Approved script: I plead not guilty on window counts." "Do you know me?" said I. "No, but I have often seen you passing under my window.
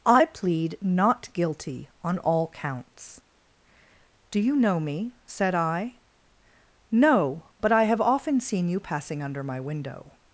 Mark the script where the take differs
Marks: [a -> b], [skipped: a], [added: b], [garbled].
I plead not guilty on [window -> all] counts." "Do you know me?" said I. "No, but I have often seen you passing under my window.